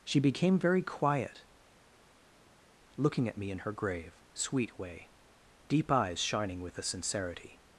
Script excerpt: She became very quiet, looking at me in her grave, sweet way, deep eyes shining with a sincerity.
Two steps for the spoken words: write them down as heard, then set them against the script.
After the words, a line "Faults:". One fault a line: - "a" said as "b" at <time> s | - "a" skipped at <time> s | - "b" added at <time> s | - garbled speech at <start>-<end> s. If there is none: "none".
She became very quiet, looking at me in her grave, sweet way, deep eyes shining with a sincerity.
Faults:
none